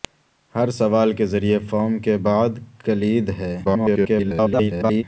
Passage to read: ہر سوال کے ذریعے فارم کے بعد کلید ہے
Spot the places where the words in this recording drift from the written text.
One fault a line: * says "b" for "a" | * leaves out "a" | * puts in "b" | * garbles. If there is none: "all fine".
* garbles